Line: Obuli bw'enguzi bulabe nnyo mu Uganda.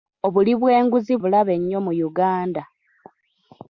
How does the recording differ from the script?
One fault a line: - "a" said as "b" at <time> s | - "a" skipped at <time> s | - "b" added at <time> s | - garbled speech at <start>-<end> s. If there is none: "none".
none